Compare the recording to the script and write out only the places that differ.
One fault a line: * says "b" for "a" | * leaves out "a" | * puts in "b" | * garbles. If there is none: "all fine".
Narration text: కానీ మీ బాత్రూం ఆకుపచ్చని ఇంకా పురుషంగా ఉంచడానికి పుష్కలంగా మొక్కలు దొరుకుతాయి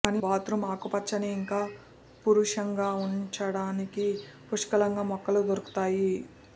* leaves out "మీ"